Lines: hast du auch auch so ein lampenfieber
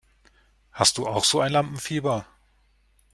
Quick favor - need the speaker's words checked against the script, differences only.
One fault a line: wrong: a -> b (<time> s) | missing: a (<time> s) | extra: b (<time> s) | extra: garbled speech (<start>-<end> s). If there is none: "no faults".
missing: auch (1.2 s)